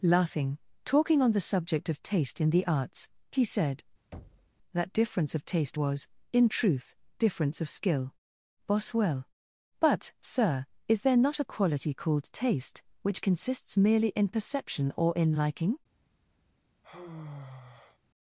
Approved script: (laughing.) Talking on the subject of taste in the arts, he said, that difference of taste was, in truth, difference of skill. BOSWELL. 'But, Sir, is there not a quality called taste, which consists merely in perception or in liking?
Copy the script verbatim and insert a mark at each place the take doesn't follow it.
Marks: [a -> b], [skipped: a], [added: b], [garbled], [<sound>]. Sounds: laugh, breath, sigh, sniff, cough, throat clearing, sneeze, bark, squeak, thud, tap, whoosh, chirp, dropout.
(laughing.) Talking on the subject of taste in the arts, he said, [thud] that difference of taste was, in truth, difference of skill. BOSWELL. 'But, Sir, is there not a quality called taste, which consists merely in perception or in liking? [sigh]